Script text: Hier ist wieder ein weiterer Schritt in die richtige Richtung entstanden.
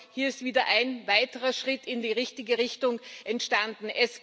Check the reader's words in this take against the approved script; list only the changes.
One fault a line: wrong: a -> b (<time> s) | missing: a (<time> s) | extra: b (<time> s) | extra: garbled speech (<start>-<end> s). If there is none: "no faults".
no faults